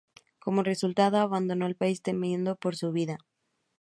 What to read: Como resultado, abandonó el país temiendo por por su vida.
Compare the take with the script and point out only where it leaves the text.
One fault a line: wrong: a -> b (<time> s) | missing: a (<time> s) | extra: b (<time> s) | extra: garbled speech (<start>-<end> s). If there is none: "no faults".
missing: por (2.7 s)